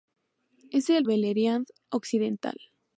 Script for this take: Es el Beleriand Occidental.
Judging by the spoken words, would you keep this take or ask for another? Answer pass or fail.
pass